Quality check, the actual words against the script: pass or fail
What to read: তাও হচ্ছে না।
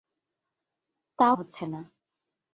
pass